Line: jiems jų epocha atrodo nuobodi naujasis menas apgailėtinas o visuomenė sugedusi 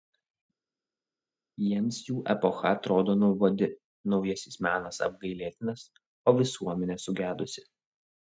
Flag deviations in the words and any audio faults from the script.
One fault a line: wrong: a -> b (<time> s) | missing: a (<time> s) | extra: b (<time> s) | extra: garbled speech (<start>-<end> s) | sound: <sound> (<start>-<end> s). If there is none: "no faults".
no faults